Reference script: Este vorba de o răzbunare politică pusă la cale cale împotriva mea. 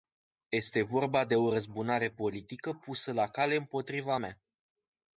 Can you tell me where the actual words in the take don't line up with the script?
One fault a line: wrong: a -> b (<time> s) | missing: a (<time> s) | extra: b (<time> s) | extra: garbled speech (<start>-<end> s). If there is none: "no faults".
missing: cale (3.6 s)